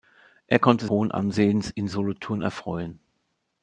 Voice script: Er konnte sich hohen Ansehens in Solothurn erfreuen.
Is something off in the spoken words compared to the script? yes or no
yes